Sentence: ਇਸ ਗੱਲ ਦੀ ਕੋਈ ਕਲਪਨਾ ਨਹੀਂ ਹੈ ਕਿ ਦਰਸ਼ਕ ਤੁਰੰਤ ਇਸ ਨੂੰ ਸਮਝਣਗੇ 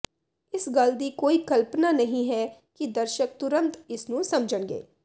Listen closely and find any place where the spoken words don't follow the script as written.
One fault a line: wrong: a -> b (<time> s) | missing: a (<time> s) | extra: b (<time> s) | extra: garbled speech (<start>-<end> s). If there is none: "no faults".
no faults